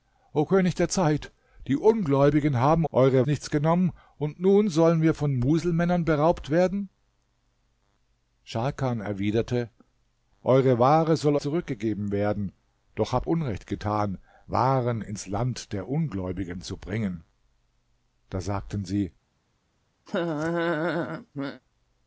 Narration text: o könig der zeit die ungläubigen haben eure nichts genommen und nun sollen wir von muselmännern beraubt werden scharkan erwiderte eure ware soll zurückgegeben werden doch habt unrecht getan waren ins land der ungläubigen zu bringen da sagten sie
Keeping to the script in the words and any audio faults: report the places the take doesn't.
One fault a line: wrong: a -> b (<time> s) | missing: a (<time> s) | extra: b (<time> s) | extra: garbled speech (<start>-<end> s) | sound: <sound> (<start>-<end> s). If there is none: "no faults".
sound: laugh (20.1-21.6 s)